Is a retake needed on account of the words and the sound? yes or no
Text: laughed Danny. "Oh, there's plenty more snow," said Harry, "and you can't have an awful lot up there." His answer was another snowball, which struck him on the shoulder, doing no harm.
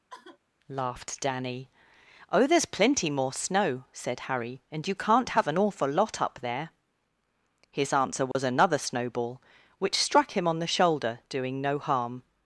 yes